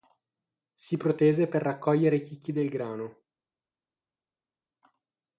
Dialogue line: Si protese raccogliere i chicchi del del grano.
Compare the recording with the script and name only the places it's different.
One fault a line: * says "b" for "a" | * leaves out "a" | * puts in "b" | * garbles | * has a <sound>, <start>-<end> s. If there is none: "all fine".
* puts in "per"
* leaves out "del"